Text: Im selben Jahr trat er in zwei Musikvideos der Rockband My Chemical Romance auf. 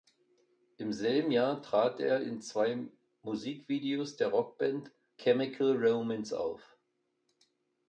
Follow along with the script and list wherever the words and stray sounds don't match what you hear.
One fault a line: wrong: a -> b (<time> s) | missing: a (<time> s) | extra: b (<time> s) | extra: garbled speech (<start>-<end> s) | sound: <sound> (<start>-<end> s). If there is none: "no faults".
missing: My (4.9 s)